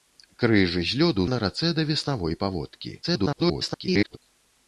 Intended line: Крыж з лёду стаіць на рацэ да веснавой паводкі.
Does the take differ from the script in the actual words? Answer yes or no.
yes